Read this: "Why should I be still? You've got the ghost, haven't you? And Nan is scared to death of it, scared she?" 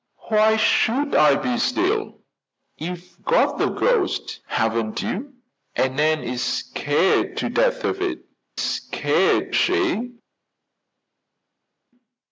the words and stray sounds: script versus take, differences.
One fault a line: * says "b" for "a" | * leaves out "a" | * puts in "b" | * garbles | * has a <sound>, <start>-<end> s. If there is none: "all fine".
all fine